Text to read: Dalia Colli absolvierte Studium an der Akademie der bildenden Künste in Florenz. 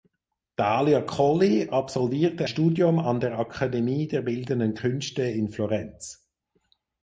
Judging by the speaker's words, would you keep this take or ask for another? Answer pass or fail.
pass